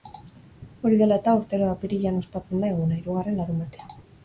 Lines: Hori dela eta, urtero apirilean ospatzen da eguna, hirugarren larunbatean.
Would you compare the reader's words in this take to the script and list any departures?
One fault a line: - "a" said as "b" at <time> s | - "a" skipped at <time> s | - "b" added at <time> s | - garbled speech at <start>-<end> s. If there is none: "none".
none